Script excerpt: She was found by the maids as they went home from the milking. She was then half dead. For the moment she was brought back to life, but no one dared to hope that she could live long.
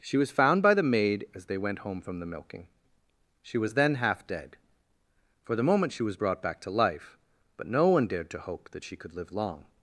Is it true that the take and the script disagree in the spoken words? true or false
true